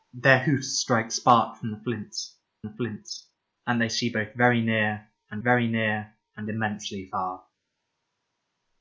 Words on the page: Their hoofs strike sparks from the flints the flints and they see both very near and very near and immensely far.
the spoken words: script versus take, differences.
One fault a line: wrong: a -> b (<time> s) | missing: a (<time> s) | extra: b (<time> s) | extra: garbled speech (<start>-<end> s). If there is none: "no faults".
no faults